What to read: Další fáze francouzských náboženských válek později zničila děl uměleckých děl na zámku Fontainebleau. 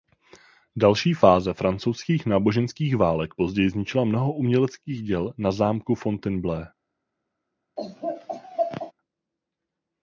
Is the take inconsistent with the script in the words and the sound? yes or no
yes